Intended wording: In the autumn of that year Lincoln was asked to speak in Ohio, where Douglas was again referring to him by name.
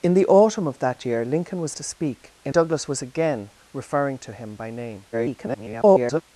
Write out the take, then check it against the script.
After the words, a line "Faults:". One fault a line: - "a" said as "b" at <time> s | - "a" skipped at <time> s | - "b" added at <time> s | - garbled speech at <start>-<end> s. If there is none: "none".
In the autumn of that year Lincoln was to speak in Douglas was again referring to him by name. [garbled]
Faults:
- "asked" skipped at 1.8 s
- "Ohio where" skipped at 2.5 s
- garbled speech at 5.1-6.2 s